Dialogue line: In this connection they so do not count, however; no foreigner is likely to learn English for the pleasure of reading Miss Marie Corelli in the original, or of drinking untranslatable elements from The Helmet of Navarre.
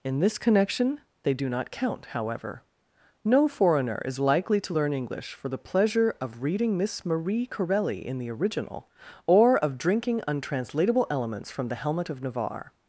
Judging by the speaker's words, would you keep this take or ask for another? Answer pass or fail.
fail